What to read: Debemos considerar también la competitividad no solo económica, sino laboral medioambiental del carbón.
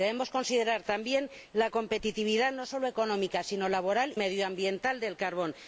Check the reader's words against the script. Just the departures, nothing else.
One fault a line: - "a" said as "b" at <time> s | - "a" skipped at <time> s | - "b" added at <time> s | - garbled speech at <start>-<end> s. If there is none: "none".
none